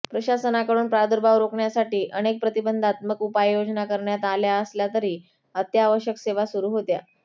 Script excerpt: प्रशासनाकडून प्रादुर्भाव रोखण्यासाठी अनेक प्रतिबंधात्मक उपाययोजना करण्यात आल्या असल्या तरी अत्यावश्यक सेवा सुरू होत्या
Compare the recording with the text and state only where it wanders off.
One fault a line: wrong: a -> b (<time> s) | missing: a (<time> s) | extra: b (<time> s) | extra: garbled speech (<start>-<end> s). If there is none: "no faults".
no faults